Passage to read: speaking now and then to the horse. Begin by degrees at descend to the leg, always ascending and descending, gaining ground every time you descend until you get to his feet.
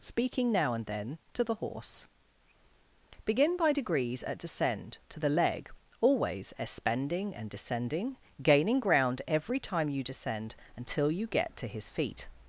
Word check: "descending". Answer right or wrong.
right